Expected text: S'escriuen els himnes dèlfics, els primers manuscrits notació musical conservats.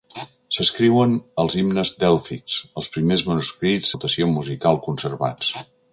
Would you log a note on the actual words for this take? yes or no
no